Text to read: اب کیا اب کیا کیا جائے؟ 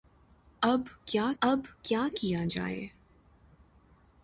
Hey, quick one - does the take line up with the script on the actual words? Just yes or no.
yes